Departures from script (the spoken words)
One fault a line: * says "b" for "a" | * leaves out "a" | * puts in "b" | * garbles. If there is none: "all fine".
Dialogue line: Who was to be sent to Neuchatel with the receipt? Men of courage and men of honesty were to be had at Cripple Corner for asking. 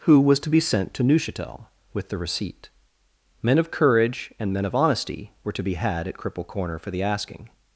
* puts in "the"